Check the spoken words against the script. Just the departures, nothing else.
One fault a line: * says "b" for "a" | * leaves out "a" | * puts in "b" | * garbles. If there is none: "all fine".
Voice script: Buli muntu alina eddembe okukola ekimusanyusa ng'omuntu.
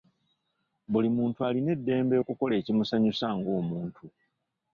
all fine